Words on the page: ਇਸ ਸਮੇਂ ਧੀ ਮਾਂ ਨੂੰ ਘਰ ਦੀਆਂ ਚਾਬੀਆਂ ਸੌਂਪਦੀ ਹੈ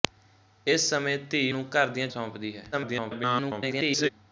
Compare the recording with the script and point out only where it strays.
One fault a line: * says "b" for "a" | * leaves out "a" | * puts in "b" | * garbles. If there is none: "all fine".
* leaves out "ਮਾਂ"
* leaves out "ਚਾਬੀਆਂ"
* garbles